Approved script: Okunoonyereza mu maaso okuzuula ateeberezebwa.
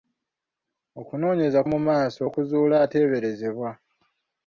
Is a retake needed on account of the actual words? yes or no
no